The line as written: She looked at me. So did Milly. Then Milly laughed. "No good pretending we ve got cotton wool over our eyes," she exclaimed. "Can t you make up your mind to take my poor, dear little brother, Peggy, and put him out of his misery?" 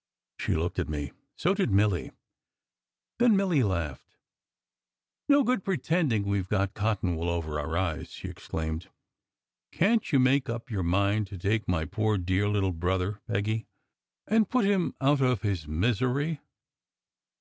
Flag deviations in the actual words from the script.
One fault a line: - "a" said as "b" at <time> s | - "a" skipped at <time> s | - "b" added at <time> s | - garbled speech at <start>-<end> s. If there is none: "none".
none